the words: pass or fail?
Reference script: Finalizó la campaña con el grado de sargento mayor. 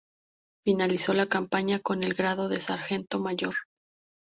pass